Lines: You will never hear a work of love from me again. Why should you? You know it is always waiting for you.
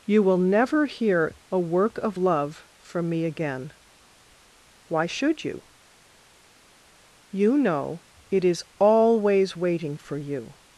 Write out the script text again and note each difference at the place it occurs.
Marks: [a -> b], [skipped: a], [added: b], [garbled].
You will never hear a work of love from me again. Why should you? You know it is always waiting for you.